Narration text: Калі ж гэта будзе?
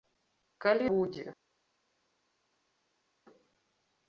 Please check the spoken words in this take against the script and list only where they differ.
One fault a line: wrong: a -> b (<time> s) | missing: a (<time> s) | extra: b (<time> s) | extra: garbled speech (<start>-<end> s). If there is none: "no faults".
missing: ж гэта (0.9 s)